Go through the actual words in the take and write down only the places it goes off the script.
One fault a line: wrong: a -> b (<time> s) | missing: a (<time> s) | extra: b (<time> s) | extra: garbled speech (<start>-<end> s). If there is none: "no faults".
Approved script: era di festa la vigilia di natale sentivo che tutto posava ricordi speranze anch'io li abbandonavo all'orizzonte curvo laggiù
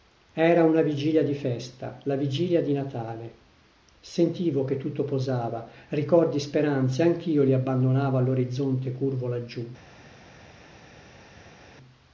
extra: una vigilia (0.6 s)